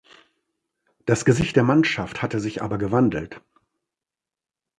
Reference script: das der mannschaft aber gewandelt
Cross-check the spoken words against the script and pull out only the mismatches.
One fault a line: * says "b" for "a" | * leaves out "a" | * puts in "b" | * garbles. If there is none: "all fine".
* puts in "gesicht"
* puts in "hatte sich"